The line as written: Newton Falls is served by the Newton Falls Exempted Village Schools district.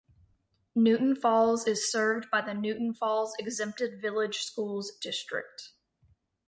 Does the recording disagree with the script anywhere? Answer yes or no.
no